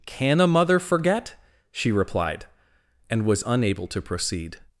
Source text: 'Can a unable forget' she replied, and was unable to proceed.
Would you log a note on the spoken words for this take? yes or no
yes